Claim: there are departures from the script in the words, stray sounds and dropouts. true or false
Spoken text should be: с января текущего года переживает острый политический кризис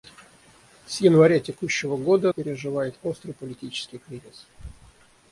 false